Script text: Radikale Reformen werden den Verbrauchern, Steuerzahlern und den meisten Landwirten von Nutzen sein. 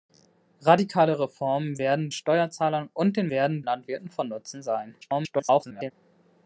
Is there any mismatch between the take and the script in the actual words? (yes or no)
yes